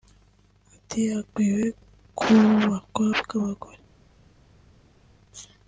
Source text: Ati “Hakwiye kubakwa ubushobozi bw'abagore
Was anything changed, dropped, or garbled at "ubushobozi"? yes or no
yes